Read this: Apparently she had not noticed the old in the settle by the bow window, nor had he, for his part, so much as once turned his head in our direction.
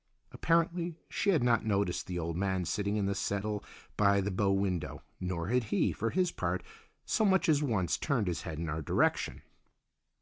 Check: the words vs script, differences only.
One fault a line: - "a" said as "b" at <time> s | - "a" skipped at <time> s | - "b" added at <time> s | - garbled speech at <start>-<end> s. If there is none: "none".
- "man sitting" added at 2.4 s